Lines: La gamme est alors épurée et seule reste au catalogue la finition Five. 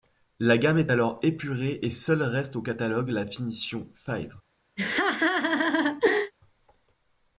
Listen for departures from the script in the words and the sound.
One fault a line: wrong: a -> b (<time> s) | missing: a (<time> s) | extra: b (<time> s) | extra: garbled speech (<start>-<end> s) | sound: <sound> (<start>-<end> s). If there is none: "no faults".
sound: laugh (4.8-6.3 s)